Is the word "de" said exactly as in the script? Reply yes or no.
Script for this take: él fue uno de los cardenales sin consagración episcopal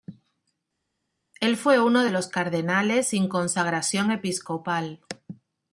yes